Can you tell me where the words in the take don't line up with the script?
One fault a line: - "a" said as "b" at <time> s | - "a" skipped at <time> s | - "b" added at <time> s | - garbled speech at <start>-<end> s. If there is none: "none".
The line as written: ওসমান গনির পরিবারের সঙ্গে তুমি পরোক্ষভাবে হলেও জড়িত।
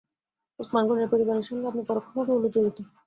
- "তুমি" said as "আপনি" at 1.7 s